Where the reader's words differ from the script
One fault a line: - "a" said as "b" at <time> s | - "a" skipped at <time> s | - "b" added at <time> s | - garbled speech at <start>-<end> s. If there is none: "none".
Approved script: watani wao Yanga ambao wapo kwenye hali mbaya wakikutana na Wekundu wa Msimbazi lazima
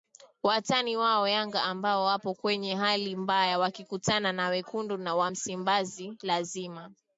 none